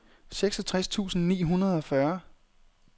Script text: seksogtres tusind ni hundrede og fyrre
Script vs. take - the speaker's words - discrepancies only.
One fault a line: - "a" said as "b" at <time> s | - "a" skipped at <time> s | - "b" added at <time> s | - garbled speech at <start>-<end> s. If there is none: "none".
none